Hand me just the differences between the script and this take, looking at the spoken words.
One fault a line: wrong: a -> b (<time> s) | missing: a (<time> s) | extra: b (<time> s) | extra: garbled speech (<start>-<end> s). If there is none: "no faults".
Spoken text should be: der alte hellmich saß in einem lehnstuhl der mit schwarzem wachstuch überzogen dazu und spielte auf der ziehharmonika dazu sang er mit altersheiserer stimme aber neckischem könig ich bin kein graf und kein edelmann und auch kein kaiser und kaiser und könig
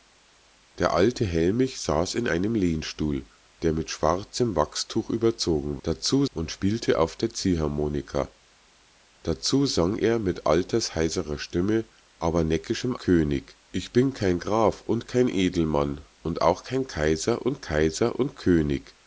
no faults